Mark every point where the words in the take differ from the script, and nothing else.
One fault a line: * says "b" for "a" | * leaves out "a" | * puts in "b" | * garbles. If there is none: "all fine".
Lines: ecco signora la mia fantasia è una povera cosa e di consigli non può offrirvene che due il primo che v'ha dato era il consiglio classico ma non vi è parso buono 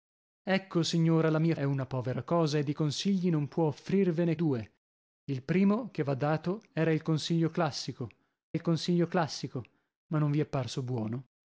* leaves out "fantasia"
* leaves out "che"
* puts in "il consiglio classico"